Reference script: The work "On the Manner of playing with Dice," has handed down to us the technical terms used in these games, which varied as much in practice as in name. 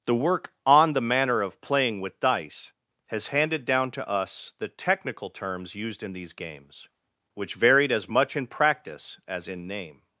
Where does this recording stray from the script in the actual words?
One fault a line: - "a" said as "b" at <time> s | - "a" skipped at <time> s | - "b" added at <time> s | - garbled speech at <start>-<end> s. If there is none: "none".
none